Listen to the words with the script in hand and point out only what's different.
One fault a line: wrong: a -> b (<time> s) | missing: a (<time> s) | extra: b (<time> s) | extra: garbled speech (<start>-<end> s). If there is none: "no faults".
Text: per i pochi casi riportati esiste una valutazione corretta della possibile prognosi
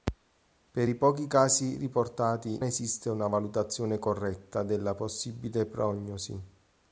no faults